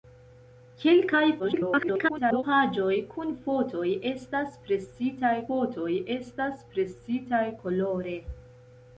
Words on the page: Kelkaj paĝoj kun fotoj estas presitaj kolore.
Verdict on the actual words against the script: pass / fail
fail